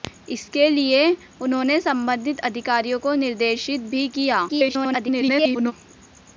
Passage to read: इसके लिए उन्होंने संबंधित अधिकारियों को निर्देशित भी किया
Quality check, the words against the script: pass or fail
fail